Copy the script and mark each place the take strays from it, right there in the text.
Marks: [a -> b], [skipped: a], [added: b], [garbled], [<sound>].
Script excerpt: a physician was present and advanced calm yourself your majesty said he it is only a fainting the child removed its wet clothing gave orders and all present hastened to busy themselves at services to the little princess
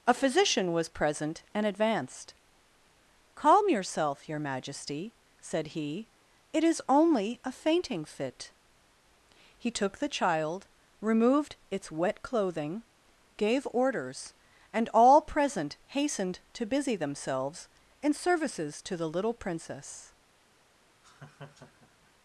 a physician was present and advanced calm yourself your majesty said he it is only a fainting [added: fit he took] the child removed its wet clothing gave orders and all present hastened to busy themselves [at -> in] services to the little princess [laugh]